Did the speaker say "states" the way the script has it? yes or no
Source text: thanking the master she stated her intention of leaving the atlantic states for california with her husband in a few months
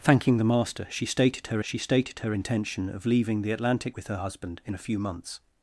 no